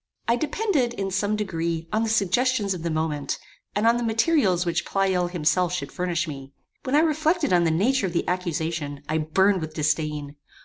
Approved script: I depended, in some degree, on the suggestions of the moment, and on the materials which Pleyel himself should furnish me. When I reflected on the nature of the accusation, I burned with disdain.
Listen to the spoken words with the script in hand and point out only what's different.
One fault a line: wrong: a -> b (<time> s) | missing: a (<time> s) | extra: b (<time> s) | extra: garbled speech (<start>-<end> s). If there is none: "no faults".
no faults